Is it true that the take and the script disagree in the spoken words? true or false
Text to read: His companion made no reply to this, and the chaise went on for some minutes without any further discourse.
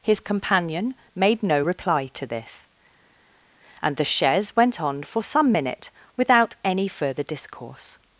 true